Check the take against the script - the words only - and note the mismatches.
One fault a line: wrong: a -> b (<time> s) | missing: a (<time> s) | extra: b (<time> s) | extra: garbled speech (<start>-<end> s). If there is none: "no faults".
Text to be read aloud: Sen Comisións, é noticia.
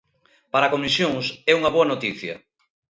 wrong: Sen -> Para (0.5 s)
extra: unha boa (1.6 s)